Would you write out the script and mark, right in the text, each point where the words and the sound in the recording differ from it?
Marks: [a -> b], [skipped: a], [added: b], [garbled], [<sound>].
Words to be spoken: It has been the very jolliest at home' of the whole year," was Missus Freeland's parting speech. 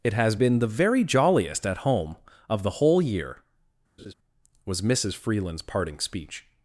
It has been the very jolliest at home' of the whole year," [laugh] was Missus Freeland's parting speech.